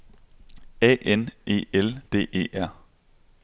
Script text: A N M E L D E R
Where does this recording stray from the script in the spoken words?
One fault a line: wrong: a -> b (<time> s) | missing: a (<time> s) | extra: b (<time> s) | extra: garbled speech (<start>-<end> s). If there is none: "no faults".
missing: M (1.3 s)